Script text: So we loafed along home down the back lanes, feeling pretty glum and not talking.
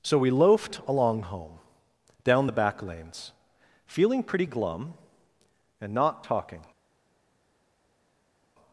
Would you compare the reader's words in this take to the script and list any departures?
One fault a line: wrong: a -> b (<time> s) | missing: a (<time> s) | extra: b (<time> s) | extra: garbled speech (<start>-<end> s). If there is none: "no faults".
no faults